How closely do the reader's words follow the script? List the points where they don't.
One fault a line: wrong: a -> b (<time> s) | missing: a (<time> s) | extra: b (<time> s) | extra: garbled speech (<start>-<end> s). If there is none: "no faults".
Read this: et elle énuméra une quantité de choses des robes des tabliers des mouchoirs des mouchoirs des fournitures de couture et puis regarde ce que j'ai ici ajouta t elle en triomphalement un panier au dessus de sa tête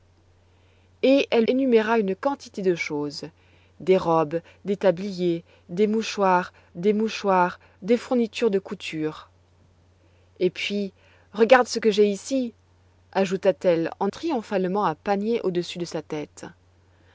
no faults